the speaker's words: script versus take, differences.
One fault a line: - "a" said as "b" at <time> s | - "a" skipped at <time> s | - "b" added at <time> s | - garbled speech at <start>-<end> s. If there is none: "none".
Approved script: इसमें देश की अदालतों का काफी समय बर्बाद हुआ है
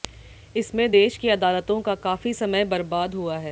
none